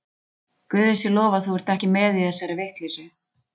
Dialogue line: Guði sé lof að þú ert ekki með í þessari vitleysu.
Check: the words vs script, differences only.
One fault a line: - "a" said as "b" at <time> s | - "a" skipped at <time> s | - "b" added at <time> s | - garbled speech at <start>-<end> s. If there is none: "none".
none